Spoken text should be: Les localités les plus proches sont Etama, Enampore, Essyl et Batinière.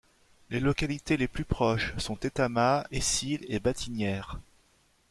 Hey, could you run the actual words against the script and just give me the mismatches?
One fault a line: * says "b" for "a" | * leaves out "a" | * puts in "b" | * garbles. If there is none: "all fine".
* leaves out "Enampore"